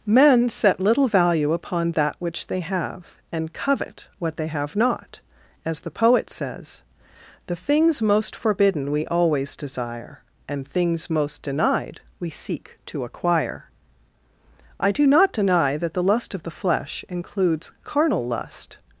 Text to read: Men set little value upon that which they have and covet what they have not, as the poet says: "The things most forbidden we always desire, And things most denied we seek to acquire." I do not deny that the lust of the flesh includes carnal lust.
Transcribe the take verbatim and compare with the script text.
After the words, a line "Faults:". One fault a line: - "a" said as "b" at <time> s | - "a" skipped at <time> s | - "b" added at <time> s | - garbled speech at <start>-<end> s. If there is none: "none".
Men set little value upon that which they have and covet what they have not, as the poet says: "The things most forbidden we always desire, And things most denied we seek to acquire." I do not deny that the lust of the flesh includes carnal lust.
Faults:
none